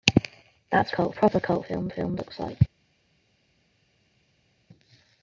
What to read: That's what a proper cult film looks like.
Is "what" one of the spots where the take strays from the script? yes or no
yes